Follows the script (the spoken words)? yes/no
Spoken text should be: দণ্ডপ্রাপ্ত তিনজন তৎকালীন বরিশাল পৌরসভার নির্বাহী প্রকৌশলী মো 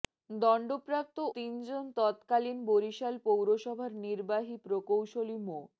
yes